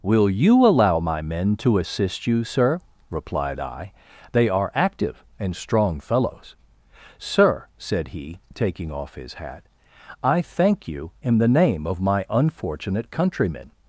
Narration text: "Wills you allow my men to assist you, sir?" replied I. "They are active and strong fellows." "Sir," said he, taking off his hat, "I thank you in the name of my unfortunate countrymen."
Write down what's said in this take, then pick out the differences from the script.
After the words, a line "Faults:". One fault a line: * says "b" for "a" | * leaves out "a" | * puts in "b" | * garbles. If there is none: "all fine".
"Will you allow my men to assist you, sir?" replied I. "They are active and strong fellows." "Sir," said he, taking off his hat, "I thank you in the name of my unfortunate countrymen."
Faults:
* says "Will" for "Wills"